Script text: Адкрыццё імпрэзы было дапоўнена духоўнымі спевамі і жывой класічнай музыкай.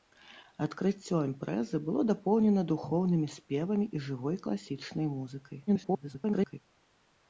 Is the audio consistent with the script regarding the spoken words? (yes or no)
no